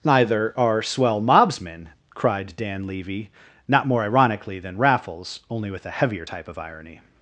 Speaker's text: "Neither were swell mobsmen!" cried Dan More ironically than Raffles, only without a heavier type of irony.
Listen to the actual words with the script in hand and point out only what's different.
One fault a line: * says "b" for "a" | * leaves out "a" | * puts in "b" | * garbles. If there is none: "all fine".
* says "are" for "were"
* puts in "Levy not"
* says "with" for "without"